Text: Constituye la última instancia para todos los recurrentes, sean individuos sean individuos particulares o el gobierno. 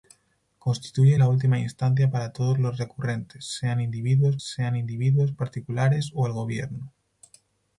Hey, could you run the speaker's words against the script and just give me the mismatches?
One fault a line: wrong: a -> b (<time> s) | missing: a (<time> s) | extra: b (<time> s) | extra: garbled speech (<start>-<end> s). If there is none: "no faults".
no faults